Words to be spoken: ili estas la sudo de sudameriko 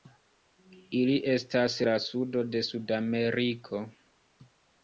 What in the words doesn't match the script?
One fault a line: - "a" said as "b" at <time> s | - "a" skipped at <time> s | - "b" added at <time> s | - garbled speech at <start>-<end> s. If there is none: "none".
none